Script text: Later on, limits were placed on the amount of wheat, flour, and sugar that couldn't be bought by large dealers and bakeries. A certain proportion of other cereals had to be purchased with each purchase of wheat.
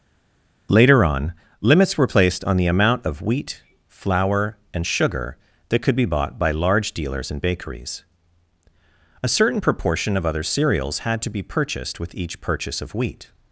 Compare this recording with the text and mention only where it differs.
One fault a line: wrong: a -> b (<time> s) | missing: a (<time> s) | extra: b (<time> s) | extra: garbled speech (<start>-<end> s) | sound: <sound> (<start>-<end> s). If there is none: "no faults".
wrong: couldn't -> could (5.8 s)